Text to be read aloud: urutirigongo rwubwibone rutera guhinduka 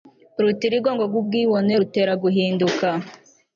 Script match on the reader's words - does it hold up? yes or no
yes